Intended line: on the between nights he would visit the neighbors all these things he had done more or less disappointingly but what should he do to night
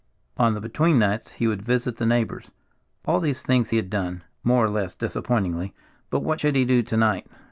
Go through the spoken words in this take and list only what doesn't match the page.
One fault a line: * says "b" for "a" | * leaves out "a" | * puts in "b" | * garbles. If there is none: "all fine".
all fine